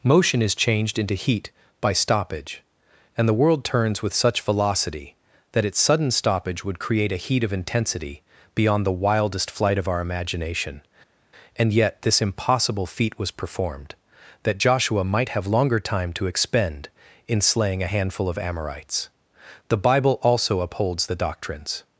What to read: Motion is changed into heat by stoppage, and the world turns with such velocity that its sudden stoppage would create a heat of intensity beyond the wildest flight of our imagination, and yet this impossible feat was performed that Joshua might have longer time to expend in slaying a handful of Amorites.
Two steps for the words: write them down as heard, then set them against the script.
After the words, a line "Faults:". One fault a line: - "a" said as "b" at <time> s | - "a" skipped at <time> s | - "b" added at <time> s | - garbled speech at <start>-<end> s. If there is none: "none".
Motion is changed into heat by stoppage, and the world turns with such velocity that its sudden stoppage would create a heat of intensity beyond the wildest flight of our imagination, and yet this impossible feat was performed that Joshua might have longer time to expend in slaying a handful of Amorites. The bible also upholds the doctrines
Faults:
- "The bible also upholds the doctrines" added at 19.7 s